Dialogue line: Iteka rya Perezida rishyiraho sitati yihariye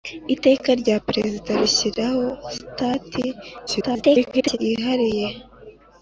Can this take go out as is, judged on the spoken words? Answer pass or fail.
fail